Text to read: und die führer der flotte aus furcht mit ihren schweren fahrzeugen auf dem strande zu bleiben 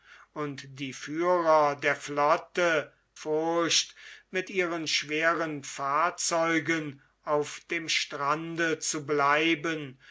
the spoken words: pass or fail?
fail